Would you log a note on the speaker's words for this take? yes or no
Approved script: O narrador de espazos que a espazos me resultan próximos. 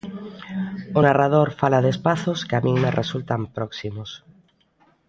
yes